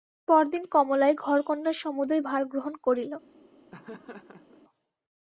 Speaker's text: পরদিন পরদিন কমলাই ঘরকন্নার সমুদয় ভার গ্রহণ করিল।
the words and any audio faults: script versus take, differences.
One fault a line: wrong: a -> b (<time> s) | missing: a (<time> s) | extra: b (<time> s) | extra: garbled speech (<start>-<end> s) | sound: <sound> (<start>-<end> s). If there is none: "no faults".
missing: পরদিন (0.6 s)
sound: laugh (3.7-4.6 s)